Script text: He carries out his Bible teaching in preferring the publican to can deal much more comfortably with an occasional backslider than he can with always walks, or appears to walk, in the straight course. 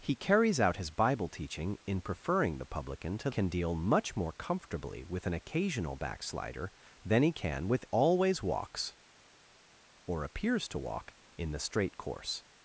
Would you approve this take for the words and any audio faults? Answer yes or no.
yes